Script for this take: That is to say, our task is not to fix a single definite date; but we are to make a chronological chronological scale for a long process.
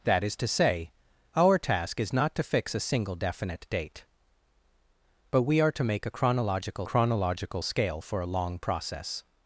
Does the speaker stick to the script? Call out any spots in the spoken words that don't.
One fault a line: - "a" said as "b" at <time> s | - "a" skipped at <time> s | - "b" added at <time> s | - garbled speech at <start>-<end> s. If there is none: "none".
none